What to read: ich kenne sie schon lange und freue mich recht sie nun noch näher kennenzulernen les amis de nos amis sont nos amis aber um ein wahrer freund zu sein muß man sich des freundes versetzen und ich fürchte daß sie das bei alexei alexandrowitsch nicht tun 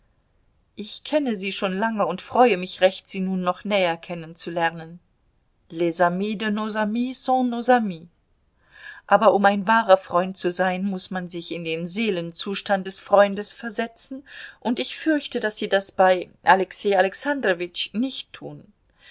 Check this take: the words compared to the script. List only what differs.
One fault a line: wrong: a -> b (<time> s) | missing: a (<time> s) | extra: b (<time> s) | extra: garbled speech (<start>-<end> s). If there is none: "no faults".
extra: in den seelenzustand (11.5 s)